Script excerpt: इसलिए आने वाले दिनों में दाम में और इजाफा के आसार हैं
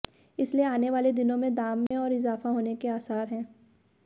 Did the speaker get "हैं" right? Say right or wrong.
right